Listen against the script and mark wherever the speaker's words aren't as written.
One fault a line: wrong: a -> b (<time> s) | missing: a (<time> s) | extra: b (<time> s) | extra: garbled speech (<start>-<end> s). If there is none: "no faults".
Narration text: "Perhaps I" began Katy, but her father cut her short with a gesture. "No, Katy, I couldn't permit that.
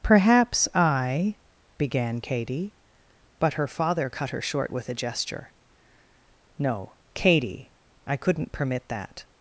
no faults